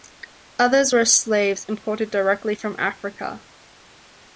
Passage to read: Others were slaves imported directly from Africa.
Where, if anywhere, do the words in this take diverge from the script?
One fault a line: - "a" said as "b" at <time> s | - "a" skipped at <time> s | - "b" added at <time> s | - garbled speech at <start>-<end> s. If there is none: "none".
none